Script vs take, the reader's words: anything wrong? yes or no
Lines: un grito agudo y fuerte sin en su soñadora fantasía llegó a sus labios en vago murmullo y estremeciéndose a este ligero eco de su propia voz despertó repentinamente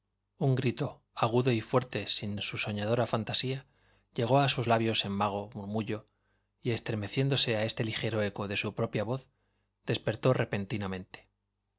no